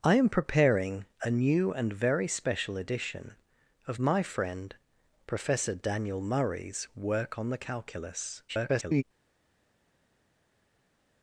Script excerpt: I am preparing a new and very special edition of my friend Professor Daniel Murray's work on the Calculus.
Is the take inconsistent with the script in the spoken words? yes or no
yes